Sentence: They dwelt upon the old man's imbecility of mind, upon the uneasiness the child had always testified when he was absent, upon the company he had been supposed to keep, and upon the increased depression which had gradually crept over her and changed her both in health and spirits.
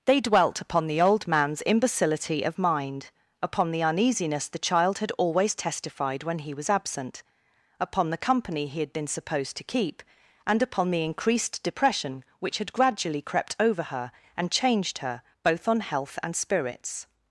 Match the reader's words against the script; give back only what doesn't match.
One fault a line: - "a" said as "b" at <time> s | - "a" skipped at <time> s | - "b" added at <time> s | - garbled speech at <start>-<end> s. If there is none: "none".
- "in" said as "on" at 15.7 s